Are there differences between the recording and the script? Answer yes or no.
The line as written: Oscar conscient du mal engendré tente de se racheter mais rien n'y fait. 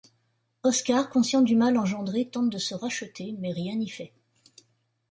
no